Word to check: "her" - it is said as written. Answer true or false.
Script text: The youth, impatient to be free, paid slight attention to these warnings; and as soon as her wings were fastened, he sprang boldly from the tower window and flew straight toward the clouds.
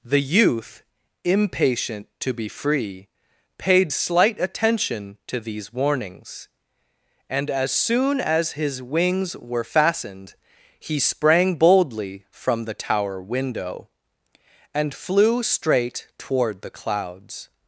false